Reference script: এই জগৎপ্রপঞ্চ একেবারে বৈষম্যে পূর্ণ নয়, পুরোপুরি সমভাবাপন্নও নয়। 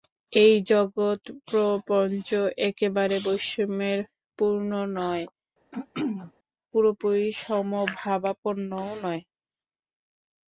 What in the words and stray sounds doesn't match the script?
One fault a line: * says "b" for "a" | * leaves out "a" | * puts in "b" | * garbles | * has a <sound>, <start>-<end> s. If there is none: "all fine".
* has a throat clearing, 5.7-6.3 s